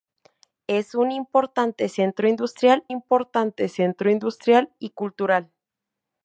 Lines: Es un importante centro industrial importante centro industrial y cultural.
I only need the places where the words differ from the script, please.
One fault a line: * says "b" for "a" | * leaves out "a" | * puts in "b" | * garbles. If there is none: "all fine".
all fine